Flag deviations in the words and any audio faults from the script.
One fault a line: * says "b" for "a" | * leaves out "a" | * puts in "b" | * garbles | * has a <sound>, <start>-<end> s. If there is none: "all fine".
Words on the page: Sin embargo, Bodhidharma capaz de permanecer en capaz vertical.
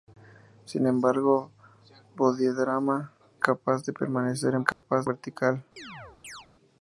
* has a dropout, 4.7-4.8 s
* has a chirp, 5.8-6.5 s